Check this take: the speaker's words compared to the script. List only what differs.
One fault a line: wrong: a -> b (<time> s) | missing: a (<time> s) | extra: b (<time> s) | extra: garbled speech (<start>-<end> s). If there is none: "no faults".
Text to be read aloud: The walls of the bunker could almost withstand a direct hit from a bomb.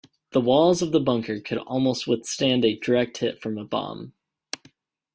no faults